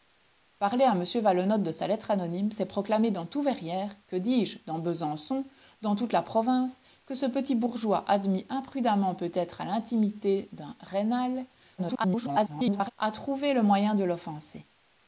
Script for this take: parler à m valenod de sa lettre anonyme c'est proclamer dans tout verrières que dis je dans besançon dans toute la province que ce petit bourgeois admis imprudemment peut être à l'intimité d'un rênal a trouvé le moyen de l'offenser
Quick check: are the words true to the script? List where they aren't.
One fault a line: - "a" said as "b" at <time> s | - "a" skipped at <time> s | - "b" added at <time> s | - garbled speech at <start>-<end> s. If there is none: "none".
- garbled speech at 11.8-12.9 s